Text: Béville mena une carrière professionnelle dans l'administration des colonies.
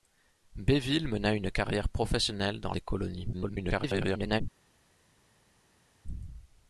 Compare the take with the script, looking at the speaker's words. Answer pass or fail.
fail